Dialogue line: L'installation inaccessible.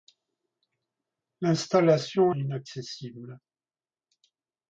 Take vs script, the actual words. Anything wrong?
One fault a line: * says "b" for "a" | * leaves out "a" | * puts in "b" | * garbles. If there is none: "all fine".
all fine